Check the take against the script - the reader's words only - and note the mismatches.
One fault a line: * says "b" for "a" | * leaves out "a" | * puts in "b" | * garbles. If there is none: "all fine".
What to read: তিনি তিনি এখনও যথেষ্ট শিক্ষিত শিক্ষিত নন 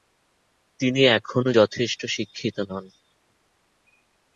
* leaves out "তিনি"
* leaves out "শিক্ষিত"